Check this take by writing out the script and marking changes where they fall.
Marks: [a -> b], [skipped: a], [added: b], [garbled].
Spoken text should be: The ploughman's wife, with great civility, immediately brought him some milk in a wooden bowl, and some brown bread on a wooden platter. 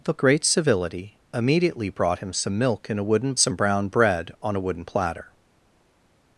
The [skipped: ploughman's wife, with] great civility, immediately brought him some milk in a wooden [skipped: bowl, and] some brown bread on a wooden platter.